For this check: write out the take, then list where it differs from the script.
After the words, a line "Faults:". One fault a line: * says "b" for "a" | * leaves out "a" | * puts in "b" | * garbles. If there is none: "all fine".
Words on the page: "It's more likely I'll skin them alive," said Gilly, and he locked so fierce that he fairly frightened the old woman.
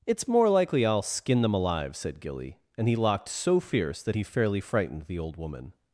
"It's more likely I'll skin them alive," said Gilly, and he locked so fierce that he fairly frightened the old woman.
Faults:
all fine